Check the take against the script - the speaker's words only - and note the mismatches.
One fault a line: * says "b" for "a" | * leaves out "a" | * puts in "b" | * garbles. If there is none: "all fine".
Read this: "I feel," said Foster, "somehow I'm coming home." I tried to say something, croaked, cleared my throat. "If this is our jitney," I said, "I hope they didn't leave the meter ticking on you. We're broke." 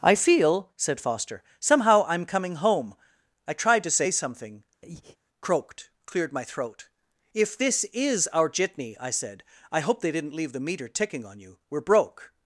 all fine